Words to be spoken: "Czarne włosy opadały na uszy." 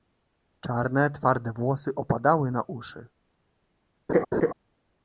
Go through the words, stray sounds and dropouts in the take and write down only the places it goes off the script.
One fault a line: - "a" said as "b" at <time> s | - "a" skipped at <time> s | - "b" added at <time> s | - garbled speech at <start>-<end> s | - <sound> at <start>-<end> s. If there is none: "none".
- "twarde" added at 1.1 s
- laugh at 4.1-4.5 s